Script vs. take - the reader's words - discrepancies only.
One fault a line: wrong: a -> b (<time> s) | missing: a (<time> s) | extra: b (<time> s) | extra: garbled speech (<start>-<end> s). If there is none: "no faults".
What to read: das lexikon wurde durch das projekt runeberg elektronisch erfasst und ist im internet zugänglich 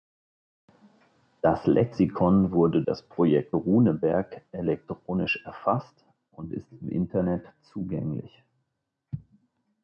missing: durch (2.8 s)